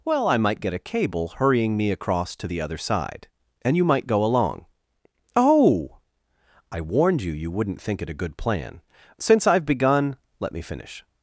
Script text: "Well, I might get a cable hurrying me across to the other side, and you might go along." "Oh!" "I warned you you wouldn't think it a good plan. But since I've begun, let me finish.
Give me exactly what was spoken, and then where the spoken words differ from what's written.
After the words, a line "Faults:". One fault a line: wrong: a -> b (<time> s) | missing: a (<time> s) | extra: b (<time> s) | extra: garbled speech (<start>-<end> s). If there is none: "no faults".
"Well, I might get a cable hurrying me across to the other side, and you might go along." "Oh!" "I warned you you wouldn't think it a good plan. Since I've begun, let me finish.
Faults:
missing: But (8.8 s)